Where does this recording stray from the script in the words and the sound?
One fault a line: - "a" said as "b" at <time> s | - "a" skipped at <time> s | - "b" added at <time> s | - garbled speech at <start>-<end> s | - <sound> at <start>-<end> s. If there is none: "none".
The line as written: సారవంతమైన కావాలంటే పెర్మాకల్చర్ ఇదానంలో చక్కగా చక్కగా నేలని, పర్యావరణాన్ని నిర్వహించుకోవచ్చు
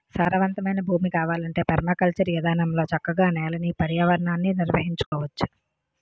- "భూమి" added at 0.8 s
- "చక్కగా" skipped at 3.3 s
- dropout at 5.1-5.1 s